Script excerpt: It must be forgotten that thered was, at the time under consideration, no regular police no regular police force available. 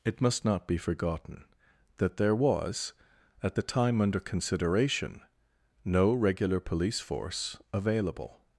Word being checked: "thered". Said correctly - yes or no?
no